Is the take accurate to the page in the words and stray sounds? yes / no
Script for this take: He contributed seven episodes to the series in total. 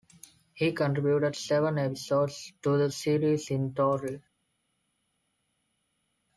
yes